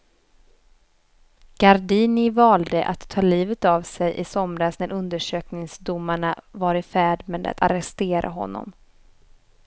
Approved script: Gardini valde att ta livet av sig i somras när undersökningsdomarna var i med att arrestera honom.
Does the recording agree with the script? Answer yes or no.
no